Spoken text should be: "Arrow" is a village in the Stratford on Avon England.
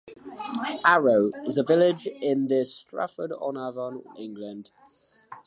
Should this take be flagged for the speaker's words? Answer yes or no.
no